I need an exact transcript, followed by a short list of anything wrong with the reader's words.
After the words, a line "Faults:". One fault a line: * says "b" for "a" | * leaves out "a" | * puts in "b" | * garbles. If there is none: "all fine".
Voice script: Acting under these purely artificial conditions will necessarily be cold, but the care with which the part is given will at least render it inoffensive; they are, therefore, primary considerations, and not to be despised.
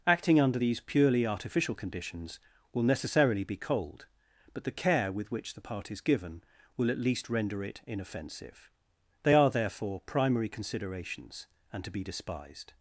Acting under these purely artificial conditions will necessarily be cold, but the care with which the part is given will at least render it inoffensive; they are, therefore, primary considerations, and to be despised.
Faults:
* leaves out "not"